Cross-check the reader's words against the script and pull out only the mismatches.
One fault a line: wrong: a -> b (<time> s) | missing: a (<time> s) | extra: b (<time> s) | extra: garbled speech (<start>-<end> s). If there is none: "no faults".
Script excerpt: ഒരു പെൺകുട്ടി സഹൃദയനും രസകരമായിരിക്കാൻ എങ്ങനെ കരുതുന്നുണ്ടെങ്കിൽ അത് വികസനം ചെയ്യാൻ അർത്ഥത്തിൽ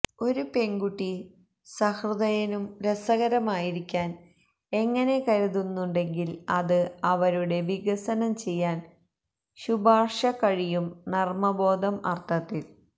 extra: അവരുടെ (7.1 s)
extra: ശുപാർശ കഴിയും നർമ്മബോധം (9.6 s)